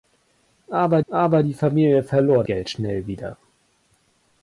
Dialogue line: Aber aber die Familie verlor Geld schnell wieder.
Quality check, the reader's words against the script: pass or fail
pass